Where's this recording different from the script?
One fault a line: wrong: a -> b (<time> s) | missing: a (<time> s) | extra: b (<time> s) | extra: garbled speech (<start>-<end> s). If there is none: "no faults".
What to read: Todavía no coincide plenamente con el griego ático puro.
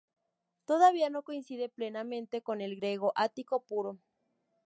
no faults